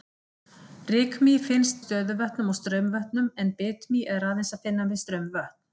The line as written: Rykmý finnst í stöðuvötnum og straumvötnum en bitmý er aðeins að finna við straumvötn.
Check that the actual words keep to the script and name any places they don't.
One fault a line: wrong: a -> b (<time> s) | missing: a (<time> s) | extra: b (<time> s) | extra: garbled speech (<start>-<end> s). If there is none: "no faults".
no faults